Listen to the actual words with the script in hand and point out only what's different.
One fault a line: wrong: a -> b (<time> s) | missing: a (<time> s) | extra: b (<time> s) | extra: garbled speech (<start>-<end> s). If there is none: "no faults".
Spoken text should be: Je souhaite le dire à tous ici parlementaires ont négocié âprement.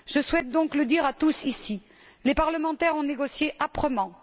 extra: donc (0.5 s)
extra: les (2.2 s)